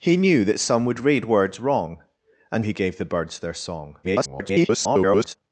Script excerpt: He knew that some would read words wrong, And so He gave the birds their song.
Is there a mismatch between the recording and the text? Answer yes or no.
yes